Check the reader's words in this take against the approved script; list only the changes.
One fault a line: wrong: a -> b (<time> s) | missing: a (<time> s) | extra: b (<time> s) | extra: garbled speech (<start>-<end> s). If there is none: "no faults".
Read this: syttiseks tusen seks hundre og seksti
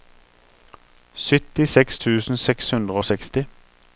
no faults